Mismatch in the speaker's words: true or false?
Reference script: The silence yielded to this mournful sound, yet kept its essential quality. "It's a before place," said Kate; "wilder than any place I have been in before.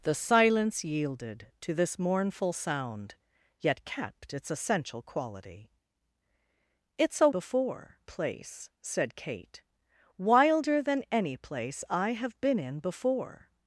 false